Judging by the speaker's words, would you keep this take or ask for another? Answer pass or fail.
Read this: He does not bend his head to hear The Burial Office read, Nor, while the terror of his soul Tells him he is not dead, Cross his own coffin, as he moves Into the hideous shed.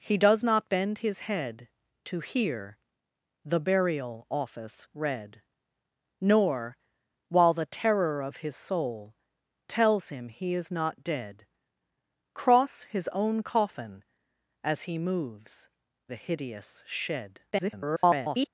fail